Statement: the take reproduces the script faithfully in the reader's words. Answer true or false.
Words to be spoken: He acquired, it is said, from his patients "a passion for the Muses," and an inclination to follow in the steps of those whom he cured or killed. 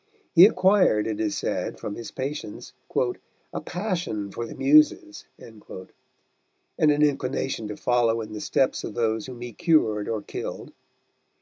true